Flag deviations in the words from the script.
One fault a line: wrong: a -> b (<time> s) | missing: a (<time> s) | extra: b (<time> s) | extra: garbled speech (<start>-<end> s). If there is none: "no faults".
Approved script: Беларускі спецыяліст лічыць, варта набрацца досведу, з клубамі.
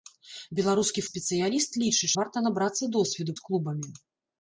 no faults